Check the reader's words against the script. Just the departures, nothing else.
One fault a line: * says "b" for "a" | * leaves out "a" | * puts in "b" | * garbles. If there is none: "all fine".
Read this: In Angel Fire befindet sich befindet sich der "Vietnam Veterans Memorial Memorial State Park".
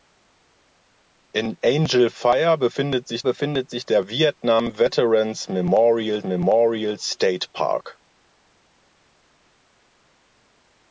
all fine